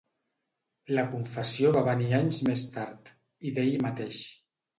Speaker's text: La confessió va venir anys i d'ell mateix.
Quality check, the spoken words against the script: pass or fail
fail